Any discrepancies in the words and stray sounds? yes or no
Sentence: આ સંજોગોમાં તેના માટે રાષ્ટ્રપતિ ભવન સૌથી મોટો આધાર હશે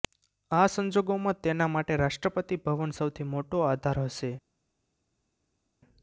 no